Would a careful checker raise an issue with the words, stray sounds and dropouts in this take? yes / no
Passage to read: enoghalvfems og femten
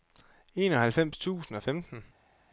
yes